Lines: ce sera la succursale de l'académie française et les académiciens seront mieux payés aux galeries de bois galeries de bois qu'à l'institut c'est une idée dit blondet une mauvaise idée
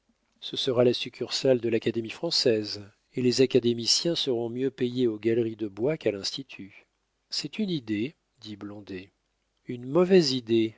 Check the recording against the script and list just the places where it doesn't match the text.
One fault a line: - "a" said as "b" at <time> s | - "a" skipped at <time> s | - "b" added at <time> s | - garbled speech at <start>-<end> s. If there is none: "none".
- "galeries de bois" skipped at 6.0 s